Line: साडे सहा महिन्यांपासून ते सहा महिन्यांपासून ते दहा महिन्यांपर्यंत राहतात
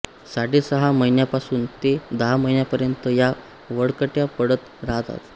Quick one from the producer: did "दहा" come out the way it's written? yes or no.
no